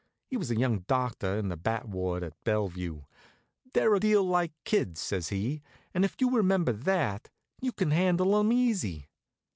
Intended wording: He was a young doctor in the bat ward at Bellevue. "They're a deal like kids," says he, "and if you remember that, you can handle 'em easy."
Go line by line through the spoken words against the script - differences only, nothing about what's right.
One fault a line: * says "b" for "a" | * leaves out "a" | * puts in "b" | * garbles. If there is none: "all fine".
all fine